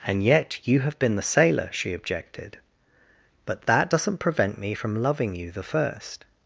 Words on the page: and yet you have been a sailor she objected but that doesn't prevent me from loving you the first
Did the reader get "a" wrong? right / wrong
wrong